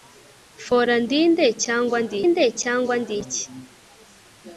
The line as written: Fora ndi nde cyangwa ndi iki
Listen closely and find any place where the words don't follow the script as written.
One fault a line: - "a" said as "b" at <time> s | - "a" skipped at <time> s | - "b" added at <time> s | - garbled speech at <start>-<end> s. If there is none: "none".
- "nde cyangwa ndi" added at 2.3 s